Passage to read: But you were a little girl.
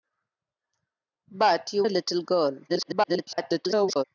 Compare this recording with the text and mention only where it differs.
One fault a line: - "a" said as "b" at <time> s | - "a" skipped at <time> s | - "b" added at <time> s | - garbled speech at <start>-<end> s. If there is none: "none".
- "were" skipped at 1.8 s
- garbled speech at 2.7-4.0 s